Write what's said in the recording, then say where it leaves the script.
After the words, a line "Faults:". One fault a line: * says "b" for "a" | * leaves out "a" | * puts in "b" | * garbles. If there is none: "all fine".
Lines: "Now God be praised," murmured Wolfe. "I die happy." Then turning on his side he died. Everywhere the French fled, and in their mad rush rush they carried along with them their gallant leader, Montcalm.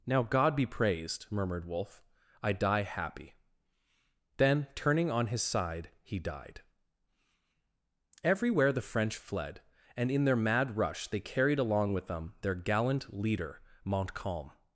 "Now God be praised," murmured Wolfe. "I die happy." Then turning on his side he died. Everywhere the French fled, and in their mad rush they carried along with them their gallant leader, Montcalm.
Faults:
* leaves out "rush"